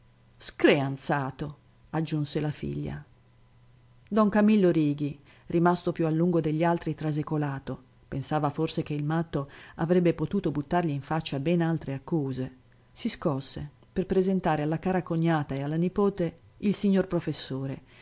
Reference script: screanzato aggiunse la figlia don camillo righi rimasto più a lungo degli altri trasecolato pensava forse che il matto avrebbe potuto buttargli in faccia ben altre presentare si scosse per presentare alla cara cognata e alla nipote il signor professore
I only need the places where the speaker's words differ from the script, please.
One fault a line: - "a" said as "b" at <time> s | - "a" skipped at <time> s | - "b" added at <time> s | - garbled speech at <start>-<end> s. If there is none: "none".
- "presentare" said as "accuse" at 11.9 s